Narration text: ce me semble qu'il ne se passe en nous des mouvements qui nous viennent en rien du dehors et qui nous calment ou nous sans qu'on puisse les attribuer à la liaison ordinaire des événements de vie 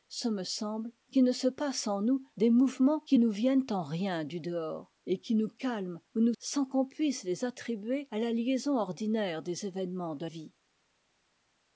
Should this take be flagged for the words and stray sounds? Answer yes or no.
no